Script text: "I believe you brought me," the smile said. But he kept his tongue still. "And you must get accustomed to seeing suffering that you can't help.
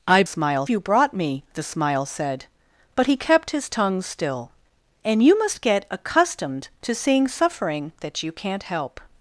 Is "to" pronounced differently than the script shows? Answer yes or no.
no